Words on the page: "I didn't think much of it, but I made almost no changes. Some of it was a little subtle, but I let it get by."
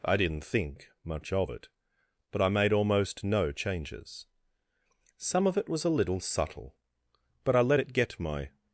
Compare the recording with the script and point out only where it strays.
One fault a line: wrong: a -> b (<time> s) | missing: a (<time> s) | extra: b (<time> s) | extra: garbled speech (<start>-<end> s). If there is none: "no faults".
wrong: by -> my (8.2 s)